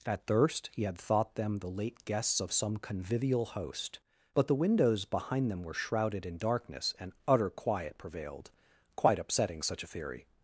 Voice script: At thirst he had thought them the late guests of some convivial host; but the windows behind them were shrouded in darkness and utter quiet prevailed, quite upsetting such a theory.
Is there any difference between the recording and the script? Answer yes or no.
no